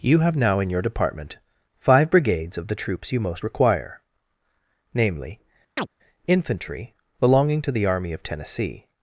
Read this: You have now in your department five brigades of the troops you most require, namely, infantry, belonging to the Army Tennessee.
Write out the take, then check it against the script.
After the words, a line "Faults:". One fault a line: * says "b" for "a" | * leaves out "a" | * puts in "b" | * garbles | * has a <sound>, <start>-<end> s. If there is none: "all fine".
You have now in your department five brigades of the troops you most require, namely, infantry, belonging to the Army of Tennessee.
Faults:
* has a chirp, 5.8-5.9 s
* puts in "of"